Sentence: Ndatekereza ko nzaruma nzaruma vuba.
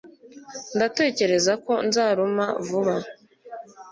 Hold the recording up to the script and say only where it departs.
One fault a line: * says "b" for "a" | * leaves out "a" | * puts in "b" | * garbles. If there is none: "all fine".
* leaves out "nzaruma"